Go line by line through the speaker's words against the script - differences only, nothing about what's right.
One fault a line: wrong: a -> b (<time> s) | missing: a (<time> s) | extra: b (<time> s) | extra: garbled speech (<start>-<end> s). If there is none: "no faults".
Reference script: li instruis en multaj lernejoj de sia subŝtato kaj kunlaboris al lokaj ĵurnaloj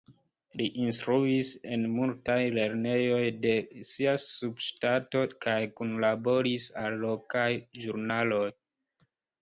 no faults